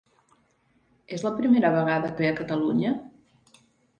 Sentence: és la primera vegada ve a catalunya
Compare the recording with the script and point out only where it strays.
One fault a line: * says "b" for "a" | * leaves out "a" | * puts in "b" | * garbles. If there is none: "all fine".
all fine